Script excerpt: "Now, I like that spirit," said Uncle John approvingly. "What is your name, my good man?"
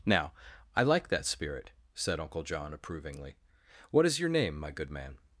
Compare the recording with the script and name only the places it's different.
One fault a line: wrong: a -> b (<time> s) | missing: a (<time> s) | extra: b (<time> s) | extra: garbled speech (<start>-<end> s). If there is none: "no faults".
no faults